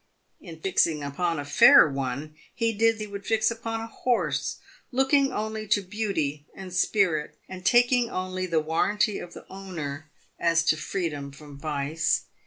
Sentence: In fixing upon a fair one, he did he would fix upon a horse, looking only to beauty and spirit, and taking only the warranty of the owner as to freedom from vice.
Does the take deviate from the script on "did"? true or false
false